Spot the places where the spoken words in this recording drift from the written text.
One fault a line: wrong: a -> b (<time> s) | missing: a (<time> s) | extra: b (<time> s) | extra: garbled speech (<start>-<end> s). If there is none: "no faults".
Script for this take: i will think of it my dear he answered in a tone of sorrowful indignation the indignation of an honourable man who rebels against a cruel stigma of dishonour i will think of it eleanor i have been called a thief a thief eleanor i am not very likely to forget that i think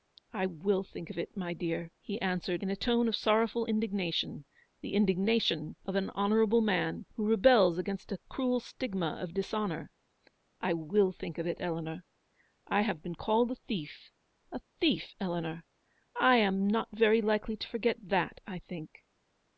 no faults